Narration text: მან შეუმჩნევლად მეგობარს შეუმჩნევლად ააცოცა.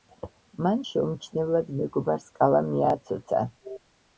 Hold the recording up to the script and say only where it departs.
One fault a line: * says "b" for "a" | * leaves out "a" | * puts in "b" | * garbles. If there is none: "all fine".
* says "კალამი" for "შეუმჩნევლად"